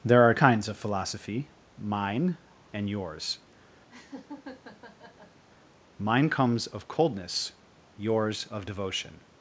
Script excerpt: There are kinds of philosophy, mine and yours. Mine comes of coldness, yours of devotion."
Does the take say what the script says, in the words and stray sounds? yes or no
no